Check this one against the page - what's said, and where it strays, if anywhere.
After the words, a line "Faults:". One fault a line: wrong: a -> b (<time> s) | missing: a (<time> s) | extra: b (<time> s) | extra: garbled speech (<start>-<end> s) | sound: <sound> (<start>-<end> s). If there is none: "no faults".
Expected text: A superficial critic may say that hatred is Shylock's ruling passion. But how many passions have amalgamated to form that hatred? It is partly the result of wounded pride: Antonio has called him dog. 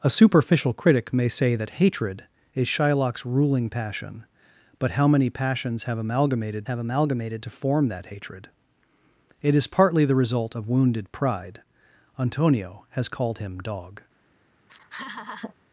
A superficial critic may say that hatred is Shylock's ruling passion. But how many passions have amalgamated have amalgamated to form that hatred? It is partly the result of wounded pride: Antonio has called him dog.
Faults:
extra: have amalgamated (6.6 s)
sound: laugh (14.7-15.5 s)